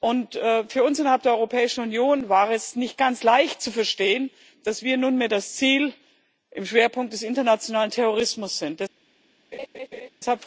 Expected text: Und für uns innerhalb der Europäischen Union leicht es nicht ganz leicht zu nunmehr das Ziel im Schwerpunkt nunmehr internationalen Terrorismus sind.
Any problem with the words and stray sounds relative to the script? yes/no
yes